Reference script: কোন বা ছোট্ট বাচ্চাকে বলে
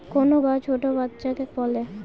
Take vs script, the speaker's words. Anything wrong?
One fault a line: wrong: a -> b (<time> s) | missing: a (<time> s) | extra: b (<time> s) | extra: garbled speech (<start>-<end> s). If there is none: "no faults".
no faults